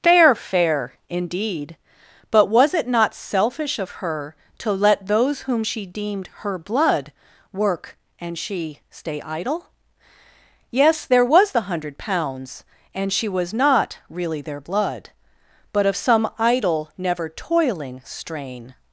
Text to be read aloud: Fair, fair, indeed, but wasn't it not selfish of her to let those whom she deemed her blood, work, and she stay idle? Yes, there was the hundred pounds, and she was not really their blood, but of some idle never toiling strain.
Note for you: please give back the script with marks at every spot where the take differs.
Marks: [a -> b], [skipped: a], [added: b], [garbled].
Fair, fair, indeed, but [wasn't -> was] it not selfish of her to let those whom she deemed her blood, work, and she stay idle? Yes, there was the hundred pounds, and she was not really their blood, but of some idle never toiling strain.